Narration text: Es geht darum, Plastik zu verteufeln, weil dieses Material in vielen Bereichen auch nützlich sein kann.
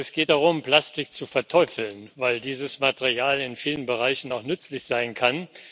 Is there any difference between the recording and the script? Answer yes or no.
no